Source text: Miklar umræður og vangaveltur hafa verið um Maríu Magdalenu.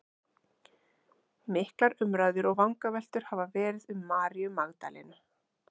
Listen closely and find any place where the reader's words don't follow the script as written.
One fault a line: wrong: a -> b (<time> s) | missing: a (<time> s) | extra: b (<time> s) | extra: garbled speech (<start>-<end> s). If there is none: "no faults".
no faults